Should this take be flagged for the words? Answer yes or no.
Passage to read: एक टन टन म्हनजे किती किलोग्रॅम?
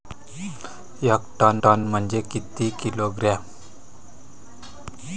no